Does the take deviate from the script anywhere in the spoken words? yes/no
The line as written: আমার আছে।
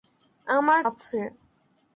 no